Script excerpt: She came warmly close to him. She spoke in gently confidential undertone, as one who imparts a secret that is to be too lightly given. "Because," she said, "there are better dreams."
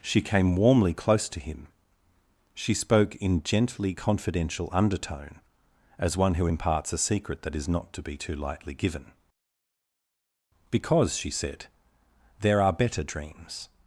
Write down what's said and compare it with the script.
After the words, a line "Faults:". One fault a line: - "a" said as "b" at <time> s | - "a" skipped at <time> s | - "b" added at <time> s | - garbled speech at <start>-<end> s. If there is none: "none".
She came warmly close to him. She spoke in gently confidential undertone, as one who imparts a secret that is not to be too lightly given. "Because," she said, "there are better dreams."
Faults:
- "not" added at 7.7 s